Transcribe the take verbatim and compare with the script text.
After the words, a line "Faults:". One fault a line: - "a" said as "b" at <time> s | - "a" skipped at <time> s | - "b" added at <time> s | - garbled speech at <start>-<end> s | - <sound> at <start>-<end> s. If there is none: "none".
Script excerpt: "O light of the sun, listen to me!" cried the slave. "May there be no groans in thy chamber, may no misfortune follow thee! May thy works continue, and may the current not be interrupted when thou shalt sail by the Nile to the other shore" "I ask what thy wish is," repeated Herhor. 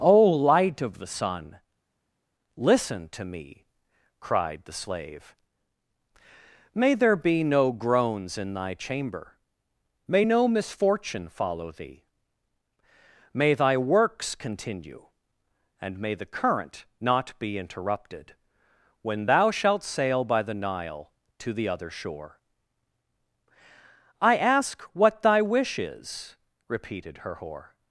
"O light of the sun, listen to me!" cried the slave. "May there be no groans in thy chamber, may no misfortune follow thee! May thy works continue, and may the current not be interrupted when thou shalt sail by the Nile to the other shore" "I ask what thy wish is," repeated Herhor.
Faults:
none